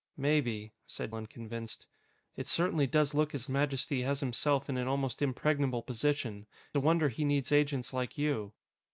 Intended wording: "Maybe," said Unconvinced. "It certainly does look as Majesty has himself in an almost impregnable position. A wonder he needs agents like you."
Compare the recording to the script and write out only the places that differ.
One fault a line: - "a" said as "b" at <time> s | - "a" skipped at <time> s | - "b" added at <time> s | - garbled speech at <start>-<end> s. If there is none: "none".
none